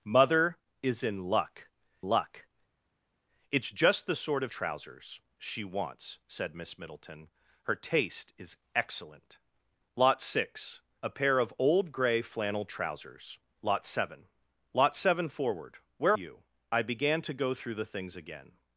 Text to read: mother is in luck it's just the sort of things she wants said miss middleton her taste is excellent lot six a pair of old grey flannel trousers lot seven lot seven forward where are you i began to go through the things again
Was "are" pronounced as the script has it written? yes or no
no